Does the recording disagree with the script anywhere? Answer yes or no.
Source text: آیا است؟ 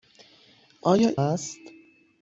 no